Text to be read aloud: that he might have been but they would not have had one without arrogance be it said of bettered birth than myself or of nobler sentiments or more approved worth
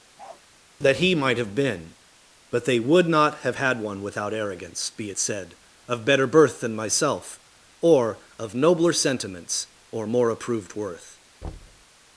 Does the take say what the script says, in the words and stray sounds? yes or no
no